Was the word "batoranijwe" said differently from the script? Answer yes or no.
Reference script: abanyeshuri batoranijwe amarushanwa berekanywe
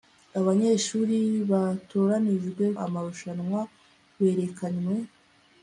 no